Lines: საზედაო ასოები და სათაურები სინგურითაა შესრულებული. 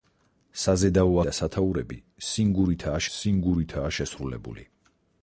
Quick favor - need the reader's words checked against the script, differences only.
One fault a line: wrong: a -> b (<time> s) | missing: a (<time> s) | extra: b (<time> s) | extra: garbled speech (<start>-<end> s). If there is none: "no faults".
missing: ასოები (1.2 s)
extra: სინგურითაა (3.2 s)